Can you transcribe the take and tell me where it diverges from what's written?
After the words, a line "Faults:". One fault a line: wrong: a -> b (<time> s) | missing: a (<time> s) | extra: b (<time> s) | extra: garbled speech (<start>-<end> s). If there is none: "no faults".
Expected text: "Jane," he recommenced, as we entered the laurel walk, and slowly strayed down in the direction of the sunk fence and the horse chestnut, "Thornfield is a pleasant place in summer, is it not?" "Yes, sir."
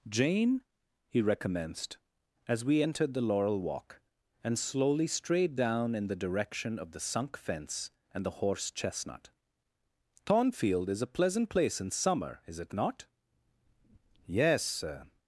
"Jane," he recommenced, as we entered the laurel walk, and slowly strayed down in the direction of the sunk fence and the horse chestnut, "Thornfield is a pleasant place in summer, is it not?" "Yes, sir."
Faults:
no faults